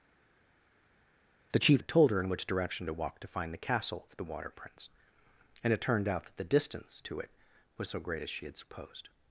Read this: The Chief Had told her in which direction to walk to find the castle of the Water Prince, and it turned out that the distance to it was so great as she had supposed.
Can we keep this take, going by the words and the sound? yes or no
yes